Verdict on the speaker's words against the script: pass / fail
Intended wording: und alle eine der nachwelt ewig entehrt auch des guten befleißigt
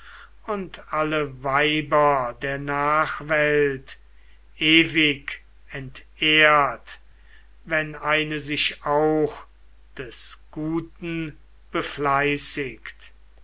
fail